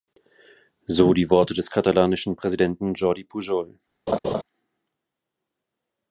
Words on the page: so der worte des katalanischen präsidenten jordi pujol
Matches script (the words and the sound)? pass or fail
fail